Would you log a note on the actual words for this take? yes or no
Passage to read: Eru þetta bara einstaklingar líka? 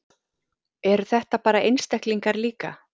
no